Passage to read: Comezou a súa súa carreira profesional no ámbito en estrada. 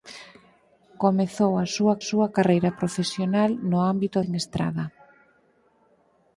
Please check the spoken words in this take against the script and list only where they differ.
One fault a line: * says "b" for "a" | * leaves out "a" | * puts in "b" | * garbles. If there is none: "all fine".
all fine